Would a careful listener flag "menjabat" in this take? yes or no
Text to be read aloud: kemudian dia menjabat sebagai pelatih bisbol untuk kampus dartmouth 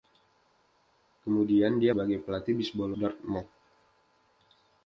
yes